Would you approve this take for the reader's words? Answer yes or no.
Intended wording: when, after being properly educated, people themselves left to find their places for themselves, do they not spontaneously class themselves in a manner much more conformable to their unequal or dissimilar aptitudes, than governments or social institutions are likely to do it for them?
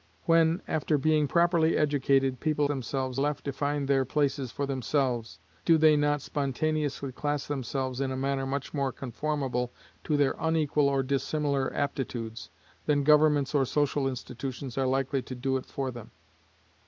yes